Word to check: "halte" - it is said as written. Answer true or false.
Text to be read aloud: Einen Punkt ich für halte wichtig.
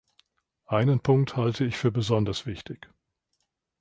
false